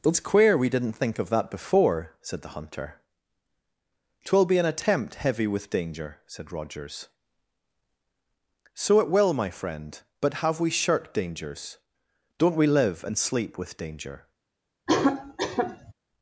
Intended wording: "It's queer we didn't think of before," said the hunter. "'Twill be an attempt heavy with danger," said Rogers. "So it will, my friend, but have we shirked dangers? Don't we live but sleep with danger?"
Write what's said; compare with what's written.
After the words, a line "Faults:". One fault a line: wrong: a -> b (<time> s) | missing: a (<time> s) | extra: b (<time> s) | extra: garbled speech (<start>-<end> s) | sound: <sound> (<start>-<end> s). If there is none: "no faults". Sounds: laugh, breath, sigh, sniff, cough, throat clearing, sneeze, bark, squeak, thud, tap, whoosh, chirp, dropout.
"It's queer we didn't think of that before," said the hunter. "'Twill be an attempt heavy with danger," said Rogers. "So it will, my friend, but have we shirked dangers? Don't we live and sleep with danger?"
Faults:
extra: that (1.3 s)
wrong: but -> and (13.0 s)
sound: cough (14.9-15.9 s)